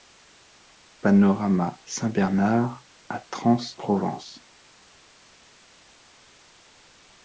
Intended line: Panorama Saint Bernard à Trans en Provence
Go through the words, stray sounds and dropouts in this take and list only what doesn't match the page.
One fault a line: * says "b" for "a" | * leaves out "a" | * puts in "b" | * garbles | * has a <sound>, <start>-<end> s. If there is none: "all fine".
* leaves out "en"